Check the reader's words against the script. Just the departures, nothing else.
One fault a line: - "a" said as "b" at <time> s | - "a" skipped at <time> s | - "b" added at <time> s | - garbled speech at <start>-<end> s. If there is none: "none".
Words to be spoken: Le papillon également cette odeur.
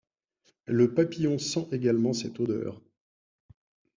- "sent" added at 1.4 s